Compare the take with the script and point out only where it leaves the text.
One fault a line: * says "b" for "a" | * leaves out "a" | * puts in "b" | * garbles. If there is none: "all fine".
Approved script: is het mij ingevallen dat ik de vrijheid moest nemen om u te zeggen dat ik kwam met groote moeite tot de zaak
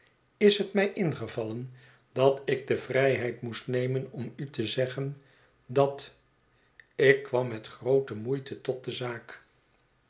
all fine